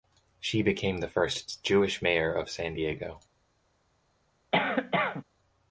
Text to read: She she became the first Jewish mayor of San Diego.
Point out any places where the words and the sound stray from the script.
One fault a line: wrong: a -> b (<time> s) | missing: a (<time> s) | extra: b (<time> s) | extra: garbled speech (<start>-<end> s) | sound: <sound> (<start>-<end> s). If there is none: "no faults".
missing: she (0.6 s)
sound: cough (4.5-5.2 s)